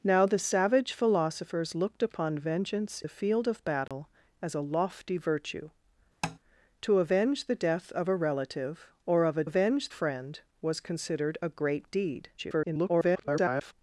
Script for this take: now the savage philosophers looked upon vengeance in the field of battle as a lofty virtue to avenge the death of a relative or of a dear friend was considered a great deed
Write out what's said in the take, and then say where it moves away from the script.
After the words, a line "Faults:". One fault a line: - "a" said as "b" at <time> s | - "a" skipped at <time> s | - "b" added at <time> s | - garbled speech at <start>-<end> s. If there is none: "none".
now the savage philosophers looked upon vengeance the field of battle as a lofty virtue to avenge the death of a relative or of a avenge friend was considered a great deed [garbled]
Faults:
- "in" skipped at 3.0 s
- "dear" said as "avenge" at 9.4 s
- garbled speech at 12.4-13.7 s